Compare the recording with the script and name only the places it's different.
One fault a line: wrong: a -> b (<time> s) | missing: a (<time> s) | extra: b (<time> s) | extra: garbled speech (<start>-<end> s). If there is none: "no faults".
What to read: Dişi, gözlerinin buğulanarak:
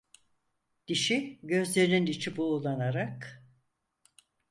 extra: içi (2.1 s)